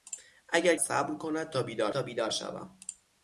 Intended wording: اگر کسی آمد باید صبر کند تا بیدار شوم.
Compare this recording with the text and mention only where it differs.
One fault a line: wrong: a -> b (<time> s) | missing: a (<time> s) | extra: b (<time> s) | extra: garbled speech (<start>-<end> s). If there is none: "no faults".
wrong: کسی آمد باید صبر کند -> صبر کند تا بیدار (0.8 s)